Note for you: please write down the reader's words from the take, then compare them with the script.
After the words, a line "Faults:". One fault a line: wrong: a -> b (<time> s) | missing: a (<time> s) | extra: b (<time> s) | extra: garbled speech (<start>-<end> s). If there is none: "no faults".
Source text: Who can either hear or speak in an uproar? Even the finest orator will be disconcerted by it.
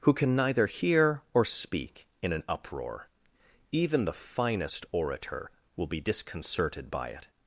Who can neither hear or speak in an uproar? Even the finest orator will be disconcerted by it.
Faults:
wrong: either -> neither (0.3 s)